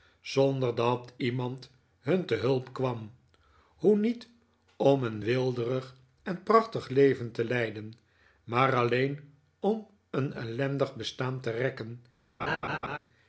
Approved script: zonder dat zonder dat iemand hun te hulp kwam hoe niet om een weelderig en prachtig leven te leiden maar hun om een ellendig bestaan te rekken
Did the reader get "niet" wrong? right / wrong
right